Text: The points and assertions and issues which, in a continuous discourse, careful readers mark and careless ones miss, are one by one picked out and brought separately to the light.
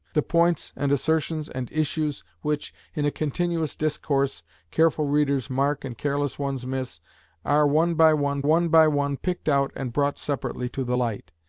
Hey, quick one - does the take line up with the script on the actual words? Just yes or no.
no